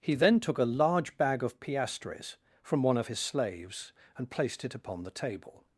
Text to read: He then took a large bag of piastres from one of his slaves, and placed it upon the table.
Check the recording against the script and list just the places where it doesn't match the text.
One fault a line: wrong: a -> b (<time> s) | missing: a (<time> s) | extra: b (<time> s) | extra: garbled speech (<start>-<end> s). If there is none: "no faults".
no faults